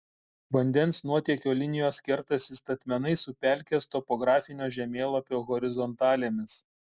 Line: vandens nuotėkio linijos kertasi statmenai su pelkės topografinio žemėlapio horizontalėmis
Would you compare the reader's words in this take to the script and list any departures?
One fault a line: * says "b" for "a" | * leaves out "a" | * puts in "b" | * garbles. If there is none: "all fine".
all fine